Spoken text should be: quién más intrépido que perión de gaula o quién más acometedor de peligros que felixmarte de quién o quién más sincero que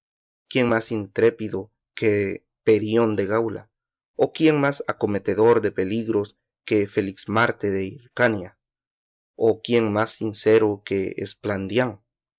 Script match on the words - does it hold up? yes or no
no